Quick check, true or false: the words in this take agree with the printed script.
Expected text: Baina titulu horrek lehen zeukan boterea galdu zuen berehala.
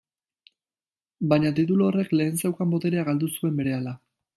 true